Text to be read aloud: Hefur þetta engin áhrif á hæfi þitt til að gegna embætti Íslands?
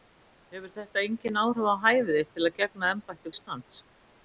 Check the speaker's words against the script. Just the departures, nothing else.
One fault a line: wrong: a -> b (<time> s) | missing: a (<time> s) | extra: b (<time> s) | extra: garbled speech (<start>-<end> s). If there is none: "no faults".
no faults